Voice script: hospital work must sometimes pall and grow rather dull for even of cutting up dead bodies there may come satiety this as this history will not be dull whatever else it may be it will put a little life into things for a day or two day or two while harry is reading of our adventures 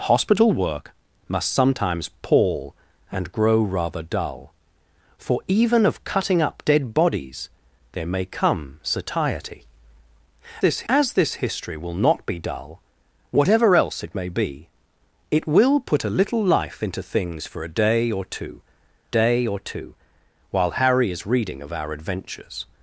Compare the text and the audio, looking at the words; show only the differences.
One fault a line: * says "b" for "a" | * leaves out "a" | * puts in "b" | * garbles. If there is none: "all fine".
all fine